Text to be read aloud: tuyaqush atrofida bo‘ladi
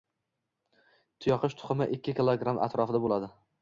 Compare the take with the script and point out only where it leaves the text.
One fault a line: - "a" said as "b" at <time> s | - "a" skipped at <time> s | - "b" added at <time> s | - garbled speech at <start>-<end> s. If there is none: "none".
- "tuxumi ikki kilogramm" added at 1.6 s